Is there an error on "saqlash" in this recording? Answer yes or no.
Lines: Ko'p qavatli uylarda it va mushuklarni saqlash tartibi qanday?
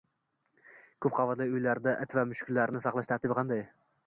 no